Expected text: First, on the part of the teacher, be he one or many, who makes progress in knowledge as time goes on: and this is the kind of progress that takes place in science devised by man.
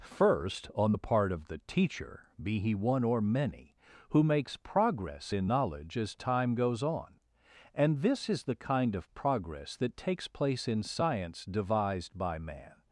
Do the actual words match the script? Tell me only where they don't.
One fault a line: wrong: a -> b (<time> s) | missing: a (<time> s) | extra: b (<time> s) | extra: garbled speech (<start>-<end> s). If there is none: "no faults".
no faults